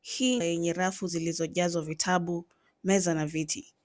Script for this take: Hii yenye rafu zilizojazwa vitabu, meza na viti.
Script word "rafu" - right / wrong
right